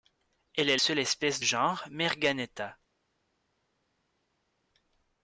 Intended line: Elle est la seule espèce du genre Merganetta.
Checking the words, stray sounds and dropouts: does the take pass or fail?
fail